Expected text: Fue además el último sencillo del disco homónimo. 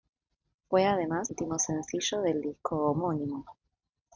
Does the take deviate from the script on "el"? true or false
true